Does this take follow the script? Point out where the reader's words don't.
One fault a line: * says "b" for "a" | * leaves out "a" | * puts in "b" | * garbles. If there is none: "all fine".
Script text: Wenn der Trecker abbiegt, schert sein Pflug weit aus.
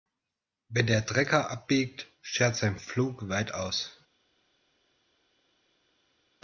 all fine